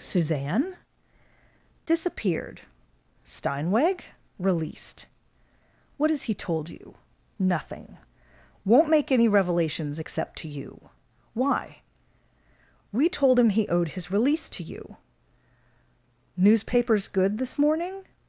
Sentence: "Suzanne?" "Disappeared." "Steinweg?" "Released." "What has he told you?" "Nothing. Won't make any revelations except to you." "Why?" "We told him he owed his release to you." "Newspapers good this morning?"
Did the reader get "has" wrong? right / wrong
right